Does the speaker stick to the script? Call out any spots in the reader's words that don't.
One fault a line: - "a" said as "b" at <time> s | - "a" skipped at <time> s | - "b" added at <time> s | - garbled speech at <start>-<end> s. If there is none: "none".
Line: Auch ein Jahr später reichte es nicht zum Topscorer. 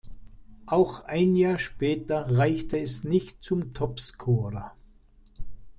none